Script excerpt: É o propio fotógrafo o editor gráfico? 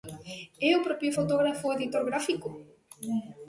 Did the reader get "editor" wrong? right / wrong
right